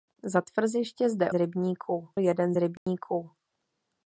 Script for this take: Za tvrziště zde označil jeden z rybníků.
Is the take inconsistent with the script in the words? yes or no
yes